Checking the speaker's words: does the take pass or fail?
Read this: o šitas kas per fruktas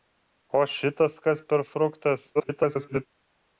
fail